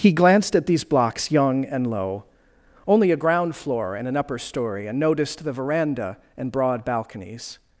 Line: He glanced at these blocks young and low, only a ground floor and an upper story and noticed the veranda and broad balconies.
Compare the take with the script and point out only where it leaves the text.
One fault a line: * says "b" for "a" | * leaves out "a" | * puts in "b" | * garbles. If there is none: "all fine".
all fine